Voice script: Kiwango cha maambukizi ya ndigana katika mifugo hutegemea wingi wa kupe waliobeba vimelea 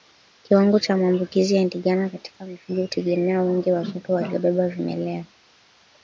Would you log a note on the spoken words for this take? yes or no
no